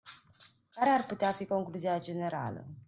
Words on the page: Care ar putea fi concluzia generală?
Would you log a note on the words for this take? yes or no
no